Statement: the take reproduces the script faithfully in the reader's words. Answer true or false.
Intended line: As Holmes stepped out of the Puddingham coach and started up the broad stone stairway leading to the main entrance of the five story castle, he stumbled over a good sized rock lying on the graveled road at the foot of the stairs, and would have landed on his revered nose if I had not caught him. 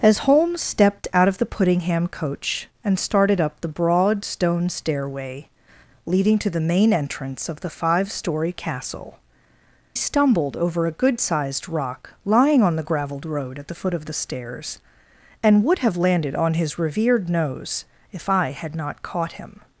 false